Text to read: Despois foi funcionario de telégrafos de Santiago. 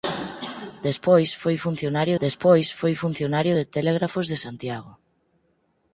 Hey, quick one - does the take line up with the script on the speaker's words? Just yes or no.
no